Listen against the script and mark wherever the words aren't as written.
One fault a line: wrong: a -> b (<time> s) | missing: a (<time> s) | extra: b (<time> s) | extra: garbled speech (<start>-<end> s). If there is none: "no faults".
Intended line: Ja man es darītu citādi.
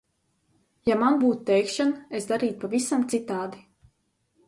extra: būtu teikšana (1.2 s)
extra: pavisam (2.6 s)